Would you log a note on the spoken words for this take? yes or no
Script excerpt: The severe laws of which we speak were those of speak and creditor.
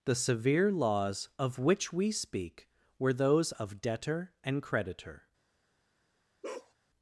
yes